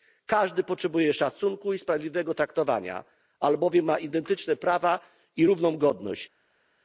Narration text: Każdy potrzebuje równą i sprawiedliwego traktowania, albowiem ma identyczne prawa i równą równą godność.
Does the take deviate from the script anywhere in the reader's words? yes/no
yes